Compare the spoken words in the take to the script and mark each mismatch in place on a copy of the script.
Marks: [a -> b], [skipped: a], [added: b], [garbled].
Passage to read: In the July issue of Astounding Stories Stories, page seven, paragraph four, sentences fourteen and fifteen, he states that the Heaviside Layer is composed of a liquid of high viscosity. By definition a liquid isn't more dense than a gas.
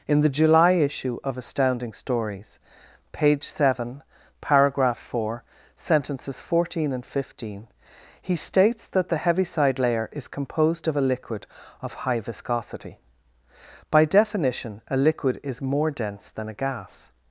In the July issue of Astounding Stories [skipped: Stories,] page seven, paragraph four, sentences fourteen and fifteen, he states that the Heaviside Layer is composed of a liquid of high viscosity. By definition a liquid [isn't -> is] more dense than a gas.